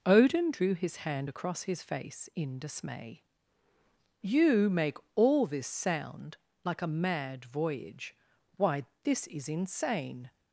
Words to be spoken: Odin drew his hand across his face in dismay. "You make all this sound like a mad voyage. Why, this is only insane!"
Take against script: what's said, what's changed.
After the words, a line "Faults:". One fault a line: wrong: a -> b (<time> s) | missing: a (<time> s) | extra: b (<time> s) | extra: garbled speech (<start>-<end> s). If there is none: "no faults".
Odin drew his hand across his face in dismay. "You make all this sound like a mad voyage. Why, this is insane!"
Faults:
missing: only (9.5 s)